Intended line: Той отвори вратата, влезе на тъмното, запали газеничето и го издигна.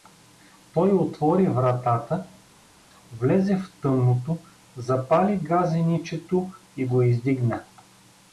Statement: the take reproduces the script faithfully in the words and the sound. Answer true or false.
false